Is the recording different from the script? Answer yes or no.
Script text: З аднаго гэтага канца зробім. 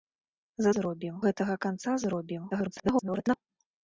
yes